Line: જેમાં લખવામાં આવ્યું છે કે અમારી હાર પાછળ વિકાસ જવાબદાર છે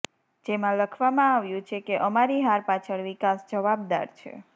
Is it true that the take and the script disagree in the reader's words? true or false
false